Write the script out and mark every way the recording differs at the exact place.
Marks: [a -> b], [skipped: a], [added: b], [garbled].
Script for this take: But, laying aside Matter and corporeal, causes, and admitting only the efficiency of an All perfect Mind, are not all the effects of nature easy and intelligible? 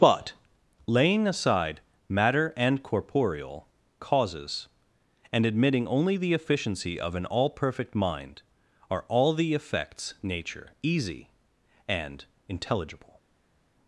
But, laying aside Matter and corporeal, causes, and admitting only the efficiency of an All perfect Mind, are [skipped: not] all the effects [skipped: of] nature easy and intelligible?